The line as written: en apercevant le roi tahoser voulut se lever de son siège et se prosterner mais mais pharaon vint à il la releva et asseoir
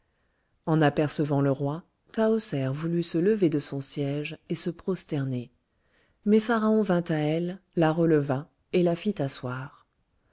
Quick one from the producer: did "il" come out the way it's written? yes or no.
no